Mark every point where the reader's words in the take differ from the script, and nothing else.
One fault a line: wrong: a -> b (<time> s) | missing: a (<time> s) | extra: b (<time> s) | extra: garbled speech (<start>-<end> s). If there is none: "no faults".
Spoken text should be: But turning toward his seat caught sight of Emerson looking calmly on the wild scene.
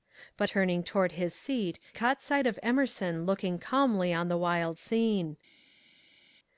no faults